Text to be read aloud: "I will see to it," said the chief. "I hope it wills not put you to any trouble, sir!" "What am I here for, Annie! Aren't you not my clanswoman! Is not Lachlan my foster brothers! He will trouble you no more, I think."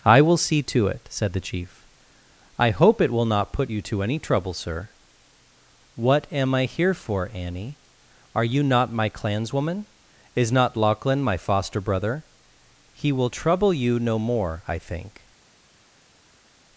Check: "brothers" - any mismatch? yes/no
yes